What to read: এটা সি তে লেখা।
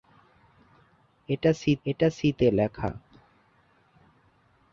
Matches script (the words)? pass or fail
fail